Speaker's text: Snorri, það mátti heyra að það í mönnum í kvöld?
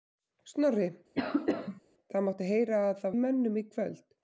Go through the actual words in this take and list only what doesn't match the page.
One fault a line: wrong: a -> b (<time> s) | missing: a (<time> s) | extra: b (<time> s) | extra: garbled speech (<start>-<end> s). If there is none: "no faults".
no faults